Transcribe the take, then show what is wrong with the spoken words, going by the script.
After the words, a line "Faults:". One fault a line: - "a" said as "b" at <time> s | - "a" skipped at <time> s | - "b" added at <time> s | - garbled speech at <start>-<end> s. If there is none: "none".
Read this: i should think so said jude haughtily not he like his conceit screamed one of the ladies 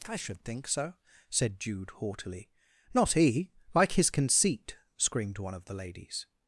i should think so said jude haughtily not he like his conceit screamed one of the ladies
Faults:
none